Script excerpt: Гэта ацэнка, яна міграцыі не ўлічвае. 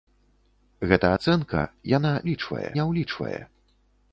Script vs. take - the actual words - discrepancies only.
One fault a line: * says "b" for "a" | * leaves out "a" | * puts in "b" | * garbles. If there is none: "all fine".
* says "ўлічвае" for "міграцыі"